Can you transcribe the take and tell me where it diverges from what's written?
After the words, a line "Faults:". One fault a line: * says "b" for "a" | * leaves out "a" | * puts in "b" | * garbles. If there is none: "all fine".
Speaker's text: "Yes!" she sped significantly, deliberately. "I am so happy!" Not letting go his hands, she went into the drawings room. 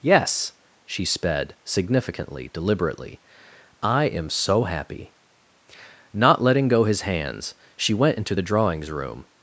"Yes!" she sped significantly, deliberately. "I am so happy!" Not letting go his hands, she went into the drawings room.
Faults:
all fine